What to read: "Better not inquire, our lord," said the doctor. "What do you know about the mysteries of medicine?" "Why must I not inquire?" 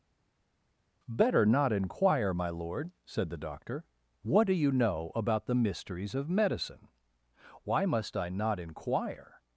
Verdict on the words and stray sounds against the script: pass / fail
fail